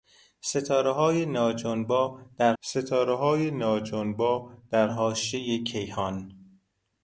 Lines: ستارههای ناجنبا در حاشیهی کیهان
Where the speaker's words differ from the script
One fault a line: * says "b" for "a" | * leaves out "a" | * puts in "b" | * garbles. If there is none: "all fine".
* puts in "ستارههای ناجنبا در"